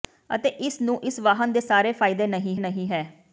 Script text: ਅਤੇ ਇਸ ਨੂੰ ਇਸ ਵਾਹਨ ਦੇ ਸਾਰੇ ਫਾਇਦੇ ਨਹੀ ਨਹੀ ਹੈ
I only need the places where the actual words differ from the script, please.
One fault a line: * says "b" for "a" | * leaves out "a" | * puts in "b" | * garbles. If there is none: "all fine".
all fine